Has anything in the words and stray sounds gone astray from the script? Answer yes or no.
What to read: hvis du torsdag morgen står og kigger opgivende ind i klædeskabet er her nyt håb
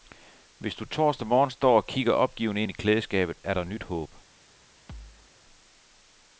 yes